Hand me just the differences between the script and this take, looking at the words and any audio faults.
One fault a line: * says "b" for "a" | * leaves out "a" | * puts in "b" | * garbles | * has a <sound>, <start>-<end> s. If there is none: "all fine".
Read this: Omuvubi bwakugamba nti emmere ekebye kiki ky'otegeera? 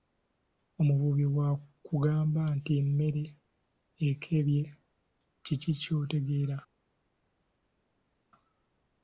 all fine